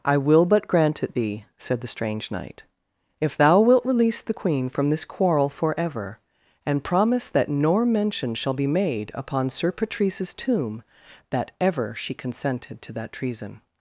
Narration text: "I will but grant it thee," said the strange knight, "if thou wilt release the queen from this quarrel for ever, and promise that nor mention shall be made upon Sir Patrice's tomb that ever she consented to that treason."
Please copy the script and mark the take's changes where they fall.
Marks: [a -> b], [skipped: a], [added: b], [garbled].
"I will but grant it thee," said the strange knight, "if thou wilt release the queen from this quarrel for ever, and promise that nor mention shall be made upon Sir Patrice's tomb that ever she consented to that treason."